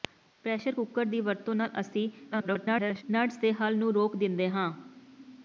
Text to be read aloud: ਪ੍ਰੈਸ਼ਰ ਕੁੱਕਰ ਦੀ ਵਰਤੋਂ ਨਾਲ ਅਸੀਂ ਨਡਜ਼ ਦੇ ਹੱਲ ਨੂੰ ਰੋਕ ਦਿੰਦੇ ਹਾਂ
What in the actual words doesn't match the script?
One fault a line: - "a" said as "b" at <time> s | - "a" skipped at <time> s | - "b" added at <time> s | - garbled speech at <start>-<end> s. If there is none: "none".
- garbled speech at 2.3-3.0 s